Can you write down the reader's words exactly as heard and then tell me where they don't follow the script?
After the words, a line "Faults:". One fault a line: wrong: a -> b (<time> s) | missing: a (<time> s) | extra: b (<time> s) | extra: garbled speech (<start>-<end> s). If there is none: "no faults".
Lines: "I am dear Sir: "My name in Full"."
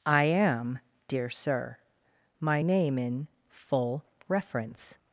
"I am dear Sir: "My name in Full"." reference
Faults:
extra: reference (4.3 s)